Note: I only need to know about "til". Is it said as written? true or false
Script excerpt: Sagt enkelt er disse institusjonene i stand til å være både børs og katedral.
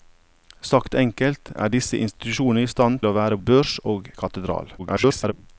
false